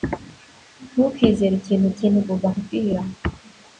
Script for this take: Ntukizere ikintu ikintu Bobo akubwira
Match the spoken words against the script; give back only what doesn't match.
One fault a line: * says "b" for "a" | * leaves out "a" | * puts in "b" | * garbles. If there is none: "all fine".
all fine